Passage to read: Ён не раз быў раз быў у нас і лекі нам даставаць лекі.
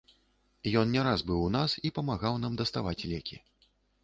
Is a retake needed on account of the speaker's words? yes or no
yes